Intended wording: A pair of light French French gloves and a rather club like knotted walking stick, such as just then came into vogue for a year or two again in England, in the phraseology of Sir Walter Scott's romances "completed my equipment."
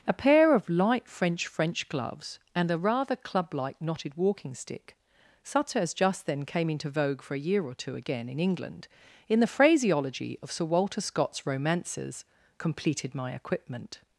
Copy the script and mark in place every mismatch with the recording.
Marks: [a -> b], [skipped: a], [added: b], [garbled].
A pair of light French French gloves and a rather club like knotted walking stick, such as just then came into vogue for a year or two again in England, in the phraseology of Sir Walter Scott's romances "completed my equipment."